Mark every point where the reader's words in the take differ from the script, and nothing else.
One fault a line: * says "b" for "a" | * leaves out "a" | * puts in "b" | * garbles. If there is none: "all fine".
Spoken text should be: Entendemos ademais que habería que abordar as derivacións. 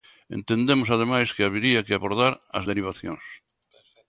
all fine